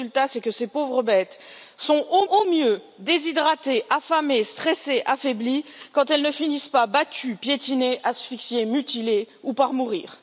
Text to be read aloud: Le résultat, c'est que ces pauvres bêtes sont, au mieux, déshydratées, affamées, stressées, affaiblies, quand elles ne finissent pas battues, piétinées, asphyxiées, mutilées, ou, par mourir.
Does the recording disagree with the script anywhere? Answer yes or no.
yes